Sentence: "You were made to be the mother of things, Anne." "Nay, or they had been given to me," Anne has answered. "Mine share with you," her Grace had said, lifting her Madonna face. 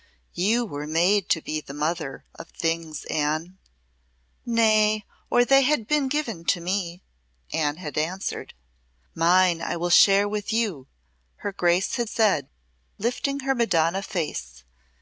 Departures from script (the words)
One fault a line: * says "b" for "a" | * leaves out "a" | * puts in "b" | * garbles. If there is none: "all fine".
* says "had" for "has"
* puts in "I will"